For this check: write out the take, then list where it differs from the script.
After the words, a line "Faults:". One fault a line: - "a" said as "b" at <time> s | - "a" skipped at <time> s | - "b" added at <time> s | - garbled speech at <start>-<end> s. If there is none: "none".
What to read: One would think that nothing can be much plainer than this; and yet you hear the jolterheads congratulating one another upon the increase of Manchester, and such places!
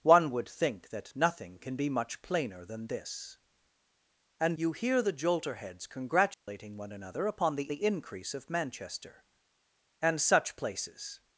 One would think that nothing can be much plainer than this; and you hear the jolterheads congratulating one another upon the the increase of Manchester, and such places!
Faults:
- "yet" skipped at 4.6 s
- "the" added at 7.7 s